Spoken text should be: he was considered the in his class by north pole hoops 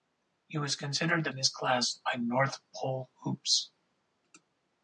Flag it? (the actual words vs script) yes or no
no